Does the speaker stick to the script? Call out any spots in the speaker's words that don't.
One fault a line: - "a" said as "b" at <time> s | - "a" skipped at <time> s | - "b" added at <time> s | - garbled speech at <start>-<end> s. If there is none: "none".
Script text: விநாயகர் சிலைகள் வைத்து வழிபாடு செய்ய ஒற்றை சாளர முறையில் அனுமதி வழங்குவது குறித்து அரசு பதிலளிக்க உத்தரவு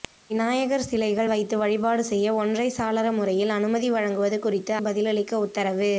- "அரசு" skipped at 4.7 s